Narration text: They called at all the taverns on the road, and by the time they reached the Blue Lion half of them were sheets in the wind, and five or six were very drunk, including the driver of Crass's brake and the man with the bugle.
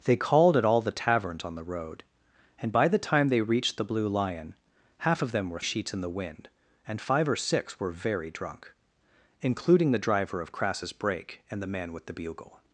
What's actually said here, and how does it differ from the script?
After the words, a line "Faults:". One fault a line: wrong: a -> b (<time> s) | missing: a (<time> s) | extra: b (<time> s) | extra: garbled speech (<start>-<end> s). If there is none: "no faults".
They called at all the taverns on the road, and by the time they reached the Blue Lion half of them were sheets in the wind, and five or six were very drunk, including the driver of Crass's brake and the man with the bugle.
Faults:
no faults